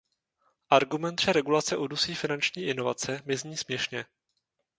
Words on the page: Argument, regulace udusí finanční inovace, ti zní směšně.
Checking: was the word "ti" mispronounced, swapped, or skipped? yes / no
yes